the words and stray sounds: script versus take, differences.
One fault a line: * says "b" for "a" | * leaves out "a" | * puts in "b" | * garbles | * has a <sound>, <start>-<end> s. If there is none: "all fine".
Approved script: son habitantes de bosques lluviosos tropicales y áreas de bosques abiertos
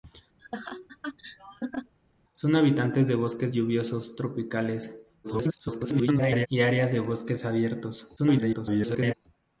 * has a laugh, 0.4-1.9 s
* garbles
* garbles